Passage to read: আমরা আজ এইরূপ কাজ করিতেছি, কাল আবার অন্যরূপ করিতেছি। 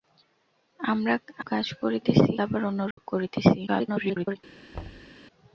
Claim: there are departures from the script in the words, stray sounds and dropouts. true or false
true